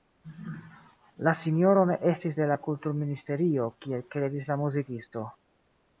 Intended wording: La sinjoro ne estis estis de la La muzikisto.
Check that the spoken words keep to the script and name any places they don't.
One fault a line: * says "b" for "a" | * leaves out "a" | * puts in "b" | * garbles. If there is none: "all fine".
* leaves out "estis"
* puts in "Kulturministerio kiel kredis"